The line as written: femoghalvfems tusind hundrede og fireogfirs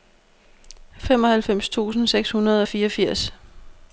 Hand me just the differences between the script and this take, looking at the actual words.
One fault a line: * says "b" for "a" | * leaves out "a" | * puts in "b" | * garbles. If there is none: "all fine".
* puts in "seks"